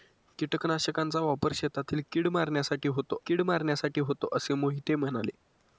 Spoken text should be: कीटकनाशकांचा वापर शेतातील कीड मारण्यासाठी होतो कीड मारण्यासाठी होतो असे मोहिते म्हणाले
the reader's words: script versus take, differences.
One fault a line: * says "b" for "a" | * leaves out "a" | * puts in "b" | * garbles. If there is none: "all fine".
all fine